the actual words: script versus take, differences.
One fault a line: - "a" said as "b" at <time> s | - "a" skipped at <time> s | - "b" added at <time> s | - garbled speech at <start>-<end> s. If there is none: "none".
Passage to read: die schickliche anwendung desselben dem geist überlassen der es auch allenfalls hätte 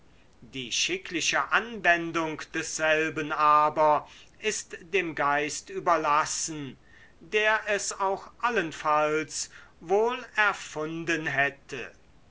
- "aber ist" added at 3.3 s
- "wohl erfunden" added at 9.8 s